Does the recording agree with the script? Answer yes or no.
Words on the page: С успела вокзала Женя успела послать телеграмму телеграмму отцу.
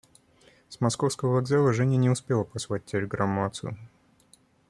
no